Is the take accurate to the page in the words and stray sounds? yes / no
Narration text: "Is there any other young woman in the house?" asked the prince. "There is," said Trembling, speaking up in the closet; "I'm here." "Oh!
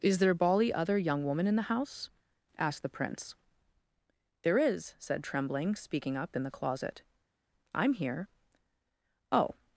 no